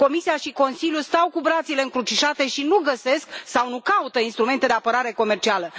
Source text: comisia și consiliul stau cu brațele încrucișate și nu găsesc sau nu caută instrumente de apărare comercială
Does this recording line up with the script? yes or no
yes